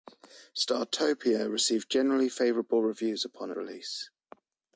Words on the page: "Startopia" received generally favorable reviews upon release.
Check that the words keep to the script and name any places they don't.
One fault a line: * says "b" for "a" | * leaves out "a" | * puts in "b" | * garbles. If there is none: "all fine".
all fine